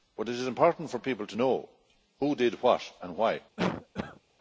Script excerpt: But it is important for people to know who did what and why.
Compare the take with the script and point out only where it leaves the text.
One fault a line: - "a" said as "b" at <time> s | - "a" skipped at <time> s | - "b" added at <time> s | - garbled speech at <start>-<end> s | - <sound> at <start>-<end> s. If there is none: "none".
- cough at 3.6-4.2 s